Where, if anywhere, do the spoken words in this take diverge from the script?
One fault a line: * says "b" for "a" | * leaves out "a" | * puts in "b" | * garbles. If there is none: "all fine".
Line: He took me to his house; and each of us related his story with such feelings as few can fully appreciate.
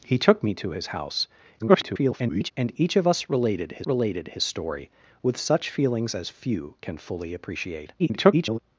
* garbles
* puts in "related his"
* garbles